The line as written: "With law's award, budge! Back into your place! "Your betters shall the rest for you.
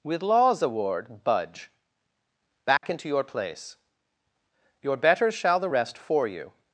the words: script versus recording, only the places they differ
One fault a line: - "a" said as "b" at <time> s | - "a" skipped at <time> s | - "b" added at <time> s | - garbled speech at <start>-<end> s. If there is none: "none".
none